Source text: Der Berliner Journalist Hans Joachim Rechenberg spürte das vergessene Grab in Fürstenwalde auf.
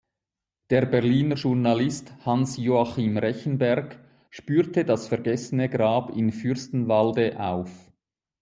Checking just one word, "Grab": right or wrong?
right